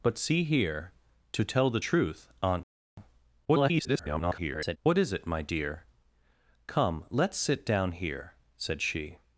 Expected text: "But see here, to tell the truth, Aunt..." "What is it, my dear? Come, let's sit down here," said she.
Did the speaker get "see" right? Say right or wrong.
right